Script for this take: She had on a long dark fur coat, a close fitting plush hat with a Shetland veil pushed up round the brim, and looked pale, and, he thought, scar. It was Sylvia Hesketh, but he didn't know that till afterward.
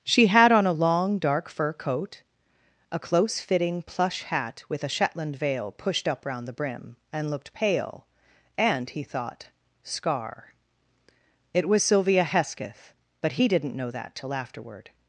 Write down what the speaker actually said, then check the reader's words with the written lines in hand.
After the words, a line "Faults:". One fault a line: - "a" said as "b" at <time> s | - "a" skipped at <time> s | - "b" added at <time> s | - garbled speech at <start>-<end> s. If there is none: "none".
She had on a long dark fur coat, a close fitting plush hat with a Shetland veil pushed up round the brim, and looked pale, and, he thought, scar. It was Sylvia Hesketh, but he didn't know that till afterward.
Faults:
none